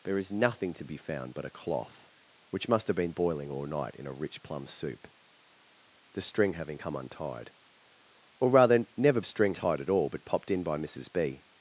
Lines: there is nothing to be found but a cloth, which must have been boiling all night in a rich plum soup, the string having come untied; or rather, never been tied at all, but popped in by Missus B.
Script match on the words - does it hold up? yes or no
no